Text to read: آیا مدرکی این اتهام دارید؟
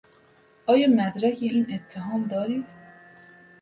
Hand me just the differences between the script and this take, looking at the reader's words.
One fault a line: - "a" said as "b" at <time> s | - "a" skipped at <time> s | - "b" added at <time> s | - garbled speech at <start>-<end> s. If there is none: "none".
none